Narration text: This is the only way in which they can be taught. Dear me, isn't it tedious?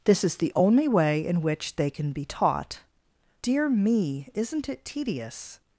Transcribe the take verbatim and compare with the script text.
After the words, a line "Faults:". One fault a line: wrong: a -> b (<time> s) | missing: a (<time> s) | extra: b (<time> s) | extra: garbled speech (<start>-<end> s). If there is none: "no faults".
This is the only way in which they can be taught. Dear me, isn't it tedious?
Faults:
no faults